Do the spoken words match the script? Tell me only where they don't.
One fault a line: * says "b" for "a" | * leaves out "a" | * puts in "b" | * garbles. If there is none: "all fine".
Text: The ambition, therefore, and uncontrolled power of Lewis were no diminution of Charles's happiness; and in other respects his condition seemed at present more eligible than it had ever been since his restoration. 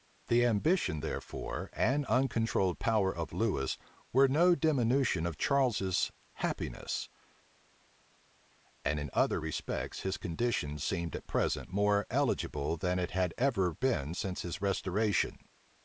all fine